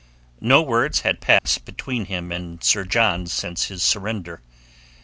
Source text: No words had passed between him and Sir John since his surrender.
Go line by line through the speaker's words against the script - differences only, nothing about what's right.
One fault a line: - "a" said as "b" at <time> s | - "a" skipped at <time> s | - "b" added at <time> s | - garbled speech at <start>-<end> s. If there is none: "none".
none